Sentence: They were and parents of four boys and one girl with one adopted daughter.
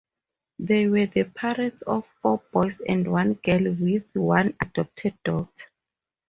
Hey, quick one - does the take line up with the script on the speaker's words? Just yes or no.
no